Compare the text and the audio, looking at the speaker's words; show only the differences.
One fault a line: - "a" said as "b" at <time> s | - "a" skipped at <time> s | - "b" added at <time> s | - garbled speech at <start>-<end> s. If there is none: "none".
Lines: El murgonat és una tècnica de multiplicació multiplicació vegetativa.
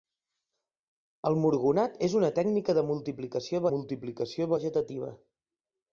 none